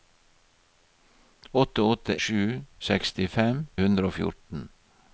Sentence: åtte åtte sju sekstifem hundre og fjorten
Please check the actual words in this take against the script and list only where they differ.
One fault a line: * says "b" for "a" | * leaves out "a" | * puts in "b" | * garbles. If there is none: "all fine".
all fine